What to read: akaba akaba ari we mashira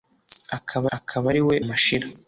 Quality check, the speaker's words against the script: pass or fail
pass